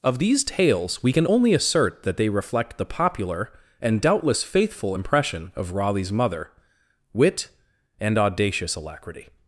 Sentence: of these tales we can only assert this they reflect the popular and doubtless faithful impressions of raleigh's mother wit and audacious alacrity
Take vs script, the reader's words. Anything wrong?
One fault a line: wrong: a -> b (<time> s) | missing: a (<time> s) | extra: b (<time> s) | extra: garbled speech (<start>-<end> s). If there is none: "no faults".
wrong: this -> that (2.0 s)
wrong: impressions -> impression (4.9 s)